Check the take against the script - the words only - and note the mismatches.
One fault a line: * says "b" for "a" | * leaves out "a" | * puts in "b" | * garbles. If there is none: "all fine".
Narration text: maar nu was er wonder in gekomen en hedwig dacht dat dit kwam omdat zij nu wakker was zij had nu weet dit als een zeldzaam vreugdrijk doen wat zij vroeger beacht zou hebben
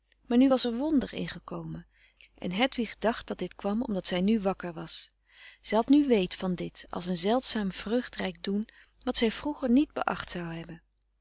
* puts in "van"
* puts in "niet"